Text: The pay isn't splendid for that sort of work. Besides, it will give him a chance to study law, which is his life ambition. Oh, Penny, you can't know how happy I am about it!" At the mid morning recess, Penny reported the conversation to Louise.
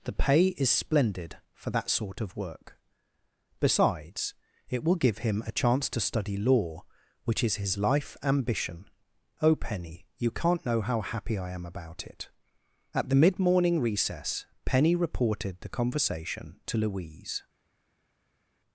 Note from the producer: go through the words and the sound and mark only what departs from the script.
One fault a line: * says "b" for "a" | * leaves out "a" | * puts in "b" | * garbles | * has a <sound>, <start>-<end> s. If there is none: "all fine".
* says "is" for "isn't"